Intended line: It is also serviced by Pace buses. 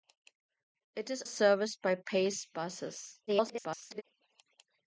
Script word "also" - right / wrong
wrong